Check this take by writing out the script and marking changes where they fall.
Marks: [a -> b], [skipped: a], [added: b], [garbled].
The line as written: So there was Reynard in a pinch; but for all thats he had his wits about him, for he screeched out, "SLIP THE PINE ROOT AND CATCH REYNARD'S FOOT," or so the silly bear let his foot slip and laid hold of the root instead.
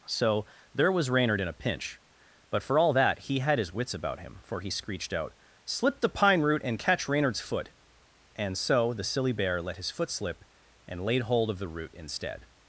So there was Reynard in a pinch; but for all [thats -> that] he had his wits about him, for he screeched out, "SLIP THE PINE ROOT AND CATCH REYNARD'S FOOT," [or -> and] so the silly bear let his foot slip and laid hold of the root instead.